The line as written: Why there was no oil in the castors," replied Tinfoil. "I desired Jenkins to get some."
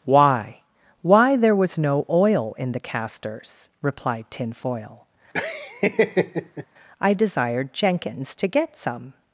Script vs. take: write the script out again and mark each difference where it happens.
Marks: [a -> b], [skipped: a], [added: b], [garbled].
Why [added: why] there was no oil in the castors," replied Tinfoil. "I desired Jenkins to get some."